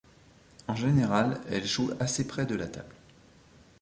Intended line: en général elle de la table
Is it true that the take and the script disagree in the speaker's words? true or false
true